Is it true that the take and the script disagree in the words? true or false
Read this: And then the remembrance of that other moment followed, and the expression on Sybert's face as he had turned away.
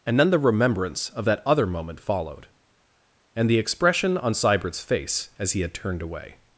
false